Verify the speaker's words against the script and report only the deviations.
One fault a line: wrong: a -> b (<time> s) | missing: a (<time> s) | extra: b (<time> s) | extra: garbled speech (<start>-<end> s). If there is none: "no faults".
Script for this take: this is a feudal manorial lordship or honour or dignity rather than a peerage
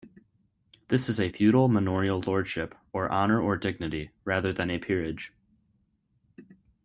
no faults